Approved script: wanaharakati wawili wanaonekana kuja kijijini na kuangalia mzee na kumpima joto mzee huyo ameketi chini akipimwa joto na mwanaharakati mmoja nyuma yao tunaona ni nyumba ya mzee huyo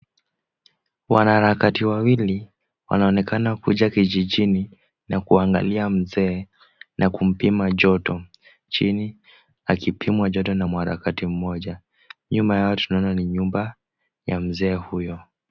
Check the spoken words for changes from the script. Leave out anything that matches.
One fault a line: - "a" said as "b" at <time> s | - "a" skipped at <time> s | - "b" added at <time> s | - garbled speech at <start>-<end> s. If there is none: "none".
- "mzee huyo ameketi" skipped at 8.2 s